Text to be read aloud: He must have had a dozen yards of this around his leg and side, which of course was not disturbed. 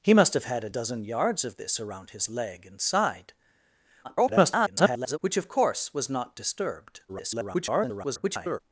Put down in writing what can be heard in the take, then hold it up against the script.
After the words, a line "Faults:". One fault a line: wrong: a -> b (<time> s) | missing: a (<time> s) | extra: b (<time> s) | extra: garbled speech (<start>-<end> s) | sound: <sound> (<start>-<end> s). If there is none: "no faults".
He must have had a dozen yards of this around his leg and side, [garbled] which of course was not disturbed. [garbled]
Faults:
extra: garbled speech (4.0-5.2 s)
extra: garbled speech (7.1-8.6 s)